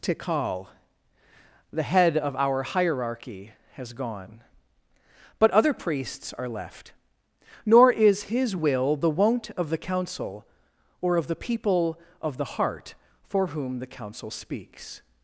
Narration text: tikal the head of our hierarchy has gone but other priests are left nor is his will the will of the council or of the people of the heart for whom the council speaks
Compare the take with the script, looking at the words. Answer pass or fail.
fail